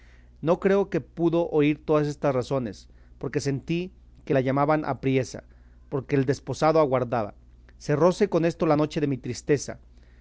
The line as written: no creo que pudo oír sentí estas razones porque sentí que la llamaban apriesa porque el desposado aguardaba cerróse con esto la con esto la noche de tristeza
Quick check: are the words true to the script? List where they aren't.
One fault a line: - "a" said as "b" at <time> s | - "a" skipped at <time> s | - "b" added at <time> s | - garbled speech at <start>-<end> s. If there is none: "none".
- "sentí" said as "todas" at 1.9 s
- "con esto la" skipped at 8.8 s
- "mi" added at 9.1 s